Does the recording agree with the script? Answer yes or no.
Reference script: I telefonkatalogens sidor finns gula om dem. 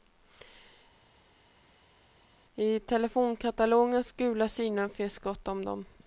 no